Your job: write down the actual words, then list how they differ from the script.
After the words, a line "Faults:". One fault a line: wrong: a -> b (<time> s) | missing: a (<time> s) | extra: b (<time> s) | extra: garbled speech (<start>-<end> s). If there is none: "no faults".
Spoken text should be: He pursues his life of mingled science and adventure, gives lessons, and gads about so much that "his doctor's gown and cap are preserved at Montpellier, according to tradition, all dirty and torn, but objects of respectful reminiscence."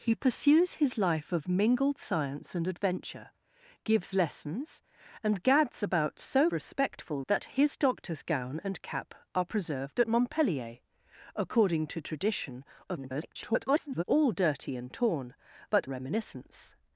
He pursues his life of mingled science and adventure, gives lessons, and gads about so respectful that "his doctor's gown and cap are preserved at Montpellier, according to tradition, [garbled] all dirty and torn, but reminiscence."
Faults:
wrong: much -> respectful (6.5 s)
extra: garbled speech (12.9-14.0 s)
missing: objects of respectful (15.9 s)